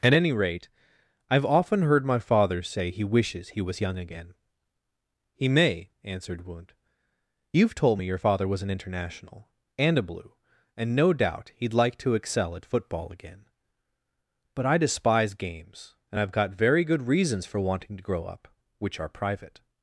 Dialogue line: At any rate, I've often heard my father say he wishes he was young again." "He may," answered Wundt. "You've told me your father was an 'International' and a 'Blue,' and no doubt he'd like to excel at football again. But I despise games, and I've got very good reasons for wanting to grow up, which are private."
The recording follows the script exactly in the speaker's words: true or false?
true